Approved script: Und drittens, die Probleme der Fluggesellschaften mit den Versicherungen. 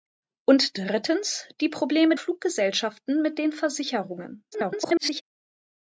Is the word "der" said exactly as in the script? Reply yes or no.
no